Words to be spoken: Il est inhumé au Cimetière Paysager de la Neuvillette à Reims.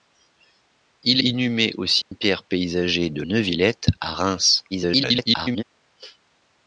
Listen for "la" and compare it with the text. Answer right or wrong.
wrong